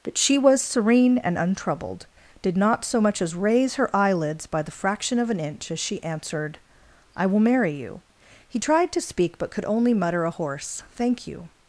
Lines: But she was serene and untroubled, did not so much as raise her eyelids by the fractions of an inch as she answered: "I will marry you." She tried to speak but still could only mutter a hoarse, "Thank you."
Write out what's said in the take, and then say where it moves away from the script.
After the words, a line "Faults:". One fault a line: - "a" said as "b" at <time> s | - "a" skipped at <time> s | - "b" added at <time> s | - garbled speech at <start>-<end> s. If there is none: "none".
But she was serene and untroubled, did not so much as raise her eyelids by the fraction of an inch as she answered: "I will marry you." He tried to speak but could only mutter a hoarse, "Thank you."
Faults:
- "fractions" said as "fraction" at 4.7 s
- "She" said as "He" at 8.5 s
- "still" skipped at 9.5 s